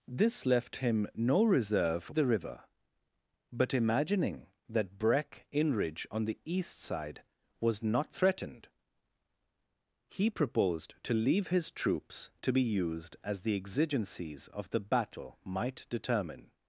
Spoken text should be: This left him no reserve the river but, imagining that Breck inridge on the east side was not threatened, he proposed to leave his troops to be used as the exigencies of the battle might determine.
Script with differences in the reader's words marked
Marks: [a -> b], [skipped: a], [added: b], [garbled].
This left him no reserve the river but, imagining that Breck inridge on the east side was not threatened, he proposed to leave his troops to be used as the exigencies of the battle might determine.